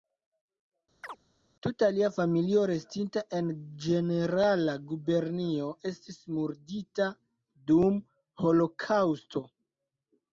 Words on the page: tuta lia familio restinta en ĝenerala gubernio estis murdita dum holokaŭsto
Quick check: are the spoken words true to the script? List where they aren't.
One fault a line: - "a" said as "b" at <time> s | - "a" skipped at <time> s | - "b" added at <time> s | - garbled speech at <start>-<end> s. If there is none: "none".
none